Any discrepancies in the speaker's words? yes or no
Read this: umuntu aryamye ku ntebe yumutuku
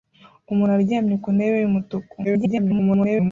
yes